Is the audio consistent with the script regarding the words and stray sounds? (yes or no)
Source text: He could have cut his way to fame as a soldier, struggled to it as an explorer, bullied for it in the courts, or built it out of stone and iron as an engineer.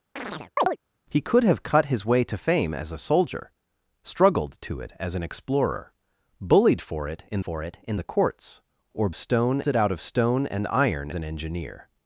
no